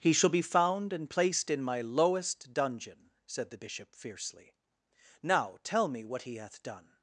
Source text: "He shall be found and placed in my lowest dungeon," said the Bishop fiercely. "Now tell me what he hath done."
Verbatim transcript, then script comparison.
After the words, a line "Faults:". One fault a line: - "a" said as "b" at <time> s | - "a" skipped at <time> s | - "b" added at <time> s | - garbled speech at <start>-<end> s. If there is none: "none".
"He shall be found and placed in my lowest dungeon," said the Bishop fiercely. "Now tell me what he hath done."
Faults:
none